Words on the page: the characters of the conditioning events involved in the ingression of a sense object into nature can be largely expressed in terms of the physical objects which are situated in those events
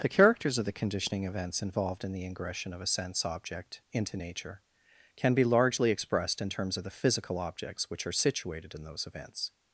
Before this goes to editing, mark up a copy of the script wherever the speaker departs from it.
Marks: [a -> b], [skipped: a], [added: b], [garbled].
the characters of the conditioning events involved in the ingression of a sense object into nature can be largely expressed in terms of the physical objects which are situated in those events